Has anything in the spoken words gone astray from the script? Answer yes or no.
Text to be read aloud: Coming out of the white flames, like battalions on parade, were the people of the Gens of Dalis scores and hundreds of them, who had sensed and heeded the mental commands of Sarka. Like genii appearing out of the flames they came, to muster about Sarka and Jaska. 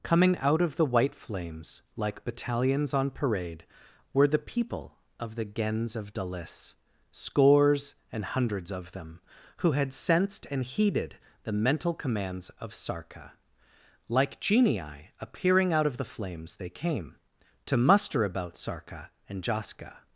no